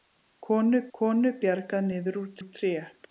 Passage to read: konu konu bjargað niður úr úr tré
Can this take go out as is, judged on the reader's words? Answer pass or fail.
pass